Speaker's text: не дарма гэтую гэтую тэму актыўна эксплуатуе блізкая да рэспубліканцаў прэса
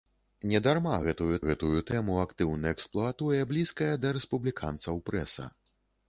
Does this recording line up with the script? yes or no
yes